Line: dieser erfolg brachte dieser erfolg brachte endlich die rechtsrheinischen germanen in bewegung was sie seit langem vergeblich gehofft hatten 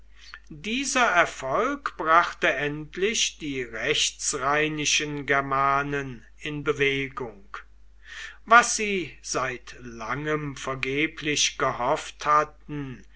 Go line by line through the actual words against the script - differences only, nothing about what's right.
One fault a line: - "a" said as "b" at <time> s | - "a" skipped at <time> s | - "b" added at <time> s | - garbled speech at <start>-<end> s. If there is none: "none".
- "dieser erfolg brachte" skipped at 2.5 s